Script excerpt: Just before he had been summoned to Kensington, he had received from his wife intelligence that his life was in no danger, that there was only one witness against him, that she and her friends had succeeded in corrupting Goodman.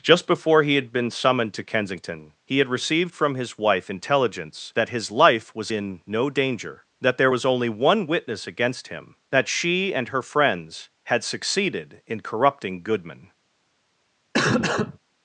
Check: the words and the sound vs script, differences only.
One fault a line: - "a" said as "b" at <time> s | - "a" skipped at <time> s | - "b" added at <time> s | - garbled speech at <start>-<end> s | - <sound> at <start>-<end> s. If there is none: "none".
- cough at 14.3-15.0 s